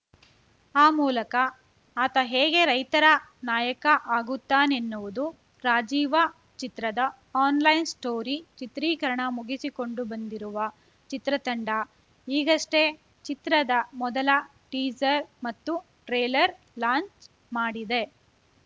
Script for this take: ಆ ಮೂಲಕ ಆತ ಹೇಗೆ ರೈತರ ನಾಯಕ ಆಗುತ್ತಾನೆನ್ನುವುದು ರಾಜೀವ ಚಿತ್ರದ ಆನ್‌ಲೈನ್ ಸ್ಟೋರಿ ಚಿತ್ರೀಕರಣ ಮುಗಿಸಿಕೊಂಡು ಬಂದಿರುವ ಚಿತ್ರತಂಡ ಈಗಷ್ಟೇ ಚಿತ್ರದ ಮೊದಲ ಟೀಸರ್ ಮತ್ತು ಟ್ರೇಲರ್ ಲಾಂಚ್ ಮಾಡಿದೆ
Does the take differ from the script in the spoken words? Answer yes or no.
no